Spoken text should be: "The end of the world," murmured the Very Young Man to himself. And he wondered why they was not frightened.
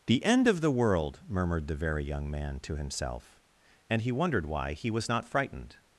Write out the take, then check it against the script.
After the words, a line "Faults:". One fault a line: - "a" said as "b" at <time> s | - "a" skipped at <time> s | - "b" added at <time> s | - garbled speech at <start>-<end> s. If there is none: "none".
"The end of the world," murmured the Very Young Man to himself. And he wondered why he was not frightened.
Faults:
- "they" said as "he" at 4.7 s